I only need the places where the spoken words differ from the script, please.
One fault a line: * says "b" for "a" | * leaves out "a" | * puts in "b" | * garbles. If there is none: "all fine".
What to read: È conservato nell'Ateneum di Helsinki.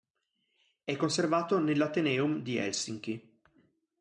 all fine